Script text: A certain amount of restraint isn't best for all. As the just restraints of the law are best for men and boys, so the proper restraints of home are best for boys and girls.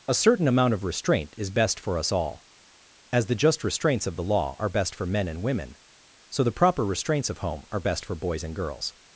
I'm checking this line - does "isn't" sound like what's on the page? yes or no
no